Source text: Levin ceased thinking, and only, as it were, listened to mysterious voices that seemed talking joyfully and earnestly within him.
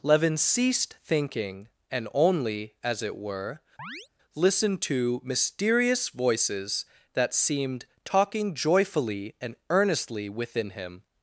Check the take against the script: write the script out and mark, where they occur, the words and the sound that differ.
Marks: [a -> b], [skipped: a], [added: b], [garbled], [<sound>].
Levin ceased thinking, and only, as it were, [chirp] listened to mysterious voices that seemed talking joyfully and earnestly within him.